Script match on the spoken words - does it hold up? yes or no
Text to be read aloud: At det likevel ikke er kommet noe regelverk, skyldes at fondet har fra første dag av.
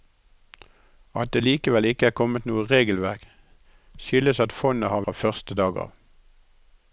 yes